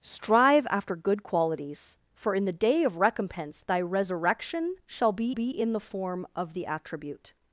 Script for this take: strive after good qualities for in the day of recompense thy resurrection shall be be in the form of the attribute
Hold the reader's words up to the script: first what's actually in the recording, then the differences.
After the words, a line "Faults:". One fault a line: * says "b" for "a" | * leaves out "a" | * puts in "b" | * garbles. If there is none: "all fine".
strive after good qualities for in the day of recompense thy resurrection shall be be in the form of the attribute
Faults:
all fine